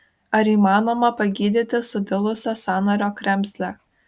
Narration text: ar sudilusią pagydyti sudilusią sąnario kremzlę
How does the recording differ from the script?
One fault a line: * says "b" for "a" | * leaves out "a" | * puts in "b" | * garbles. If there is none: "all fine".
* says "įmanoma" for "sudilusią"